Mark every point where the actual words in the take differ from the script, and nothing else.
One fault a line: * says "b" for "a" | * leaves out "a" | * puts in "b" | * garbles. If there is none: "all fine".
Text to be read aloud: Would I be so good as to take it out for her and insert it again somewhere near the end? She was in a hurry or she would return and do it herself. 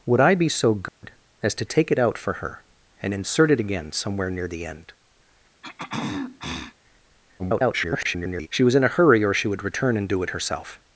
* garbles